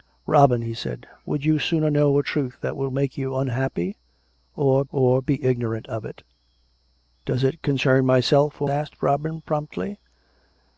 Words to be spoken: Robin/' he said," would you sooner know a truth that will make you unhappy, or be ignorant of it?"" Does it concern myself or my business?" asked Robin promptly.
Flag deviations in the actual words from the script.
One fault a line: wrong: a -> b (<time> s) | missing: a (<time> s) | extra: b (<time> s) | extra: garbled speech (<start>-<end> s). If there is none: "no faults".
extra: or (4.9 s)
missing: my business (8.7 s)